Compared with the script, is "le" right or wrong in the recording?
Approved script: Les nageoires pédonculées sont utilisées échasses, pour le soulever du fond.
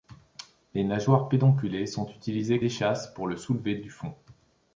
right